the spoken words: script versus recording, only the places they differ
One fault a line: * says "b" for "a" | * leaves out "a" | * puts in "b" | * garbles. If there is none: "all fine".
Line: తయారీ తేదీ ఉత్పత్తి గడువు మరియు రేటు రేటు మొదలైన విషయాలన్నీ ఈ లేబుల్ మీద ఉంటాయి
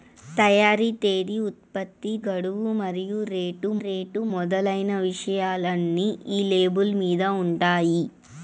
all fine